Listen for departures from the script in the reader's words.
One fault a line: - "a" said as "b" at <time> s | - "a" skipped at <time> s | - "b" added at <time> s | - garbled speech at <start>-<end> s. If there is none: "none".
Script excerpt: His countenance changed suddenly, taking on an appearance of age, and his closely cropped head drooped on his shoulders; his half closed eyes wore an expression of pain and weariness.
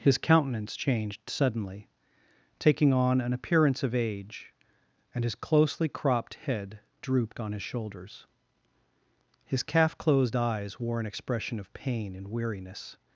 - "half" said as "calf" at 9.6 s